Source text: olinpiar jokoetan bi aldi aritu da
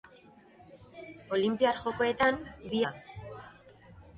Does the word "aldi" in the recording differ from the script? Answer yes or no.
yes